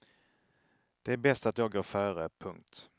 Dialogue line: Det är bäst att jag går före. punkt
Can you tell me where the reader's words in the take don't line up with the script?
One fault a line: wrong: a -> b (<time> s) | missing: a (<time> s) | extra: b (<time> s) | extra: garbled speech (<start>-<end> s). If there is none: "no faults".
no faults